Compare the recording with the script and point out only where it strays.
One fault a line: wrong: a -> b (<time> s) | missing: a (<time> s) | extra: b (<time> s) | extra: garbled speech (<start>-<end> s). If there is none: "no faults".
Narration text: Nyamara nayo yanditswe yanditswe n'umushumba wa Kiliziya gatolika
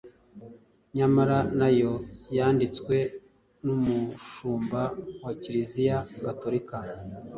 missing: yanditswe (3.0 s)